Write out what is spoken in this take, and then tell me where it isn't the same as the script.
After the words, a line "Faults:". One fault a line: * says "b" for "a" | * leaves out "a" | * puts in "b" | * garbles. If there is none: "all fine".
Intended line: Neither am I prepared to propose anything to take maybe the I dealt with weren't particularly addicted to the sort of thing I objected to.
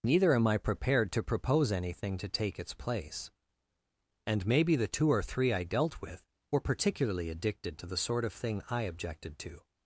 Neither am I prepared to propose anything to take its place. And maybe the two or three I dealt with were particularly addicted to the sort of thing I objected to.
Faults:
* puts in "its place And"
* puts in "two or three"
* says "were" for "weren't"